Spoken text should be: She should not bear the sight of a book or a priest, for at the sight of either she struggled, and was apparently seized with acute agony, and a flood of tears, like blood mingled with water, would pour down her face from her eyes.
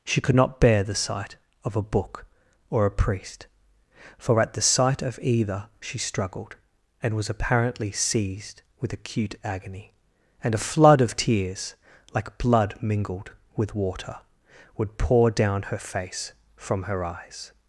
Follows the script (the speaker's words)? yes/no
no